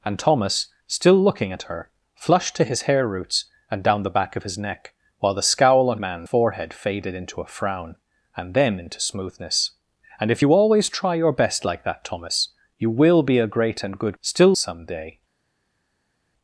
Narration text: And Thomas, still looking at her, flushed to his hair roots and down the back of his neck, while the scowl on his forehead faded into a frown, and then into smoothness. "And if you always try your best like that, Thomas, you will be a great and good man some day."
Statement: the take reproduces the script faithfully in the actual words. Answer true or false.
false